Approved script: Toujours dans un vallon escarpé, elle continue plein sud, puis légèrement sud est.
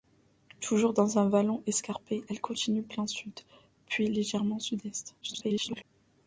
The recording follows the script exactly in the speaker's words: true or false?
false